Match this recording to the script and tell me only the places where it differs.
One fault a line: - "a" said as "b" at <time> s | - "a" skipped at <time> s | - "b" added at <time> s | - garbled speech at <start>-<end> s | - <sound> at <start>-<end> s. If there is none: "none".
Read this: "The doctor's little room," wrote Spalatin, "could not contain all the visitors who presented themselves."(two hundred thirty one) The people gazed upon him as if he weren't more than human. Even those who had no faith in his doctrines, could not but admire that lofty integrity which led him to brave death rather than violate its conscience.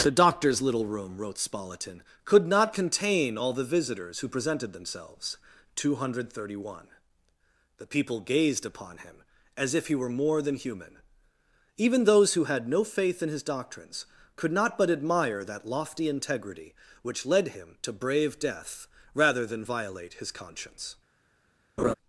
- "weren't" said as "were" at 9.9 s
- "its" said as "his" at 20.1 s
- laugh at 21.8-21.9 s